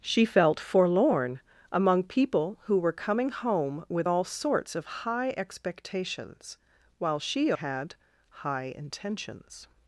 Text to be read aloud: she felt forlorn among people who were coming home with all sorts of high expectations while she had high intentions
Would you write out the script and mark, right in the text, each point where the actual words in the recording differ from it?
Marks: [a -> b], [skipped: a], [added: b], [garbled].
she felt forlorn among people who were coming home with all sorts of high expectations while she had high intentions